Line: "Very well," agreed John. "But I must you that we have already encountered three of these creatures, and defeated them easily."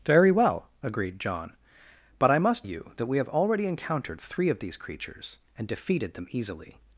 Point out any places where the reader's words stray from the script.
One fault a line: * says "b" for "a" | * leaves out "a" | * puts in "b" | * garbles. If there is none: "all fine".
all fine